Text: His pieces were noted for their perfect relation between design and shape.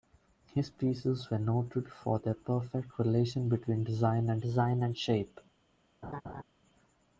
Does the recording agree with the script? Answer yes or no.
no